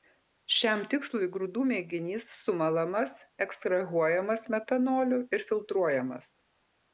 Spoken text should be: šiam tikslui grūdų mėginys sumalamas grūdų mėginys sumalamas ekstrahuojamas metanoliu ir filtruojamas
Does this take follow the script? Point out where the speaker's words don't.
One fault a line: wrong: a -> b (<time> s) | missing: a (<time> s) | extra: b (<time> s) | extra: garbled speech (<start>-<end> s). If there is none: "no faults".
missing: grūdų mėginys sumalamas (3.2 s)